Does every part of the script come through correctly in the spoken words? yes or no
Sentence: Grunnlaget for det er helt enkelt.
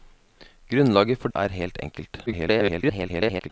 no